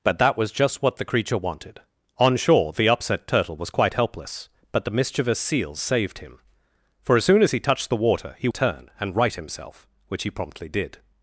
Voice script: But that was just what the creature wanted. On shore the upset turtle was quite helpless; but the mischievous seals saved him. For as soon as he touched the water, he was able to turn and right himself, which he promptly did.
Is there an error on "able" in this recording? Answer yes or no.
yes